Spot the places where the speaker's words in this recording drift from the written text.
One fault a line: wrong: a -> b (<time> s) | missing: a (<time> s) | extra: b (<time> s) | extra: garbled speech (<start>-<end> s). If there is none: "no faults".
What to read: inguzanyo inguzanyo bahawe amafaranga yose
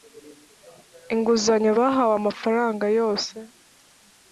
missing: inguzanyo (1.7 s)